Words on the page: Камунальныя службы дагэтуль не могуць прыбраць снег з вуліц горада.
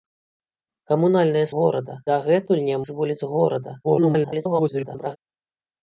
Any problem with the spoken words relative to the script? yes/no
yes